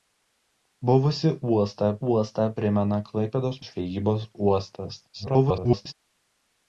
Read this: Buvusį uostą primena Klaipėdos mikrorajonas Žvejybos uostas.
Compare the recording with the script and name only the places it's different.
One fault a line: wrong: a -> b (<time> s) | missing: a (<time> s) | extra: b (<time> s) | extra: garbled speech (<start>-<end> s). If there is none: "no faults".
extra: uostą (2.1 s)
missing: mikrorajonas (3.6 s)
extra: garbled speech (5.1-5.9 s)